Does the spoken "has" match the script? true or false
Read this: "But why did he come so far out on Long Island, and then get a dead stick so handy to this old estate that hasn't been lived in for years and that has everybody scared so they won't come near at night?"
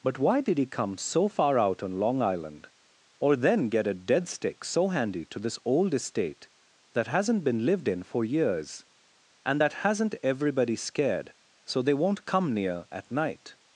false